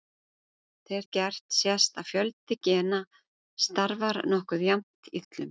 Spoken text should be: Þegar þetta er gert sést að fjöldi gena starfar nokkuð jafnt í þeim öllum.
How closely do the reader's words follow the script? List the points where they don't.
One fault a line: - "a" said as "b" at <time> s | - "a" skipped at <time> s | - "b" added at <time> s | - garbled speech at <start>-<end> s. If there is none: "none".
- "þetta" skipped at 1.0 s
- "þeim" skipped at 5.3 s